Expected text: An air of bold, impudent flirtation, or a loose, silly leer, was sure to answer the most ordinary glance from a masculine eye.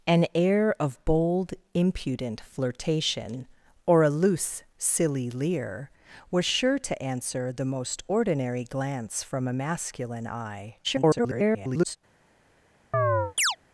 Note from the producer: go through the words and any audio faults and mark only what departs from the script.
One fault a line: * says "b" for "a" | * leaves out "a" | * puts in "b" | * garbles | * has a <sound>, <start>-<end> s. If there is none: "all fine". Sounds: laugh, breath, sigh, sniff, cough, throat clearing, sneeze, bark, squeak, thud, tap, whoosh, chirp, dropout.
* garbles
* has a chirp, 12.9-13.6 s